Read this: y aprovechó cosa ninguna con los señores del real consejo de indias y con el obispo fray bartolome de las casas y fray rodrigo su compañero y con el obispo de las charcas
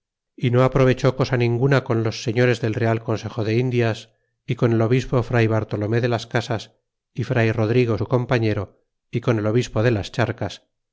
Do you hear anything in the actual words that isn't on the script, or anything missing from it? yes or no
yes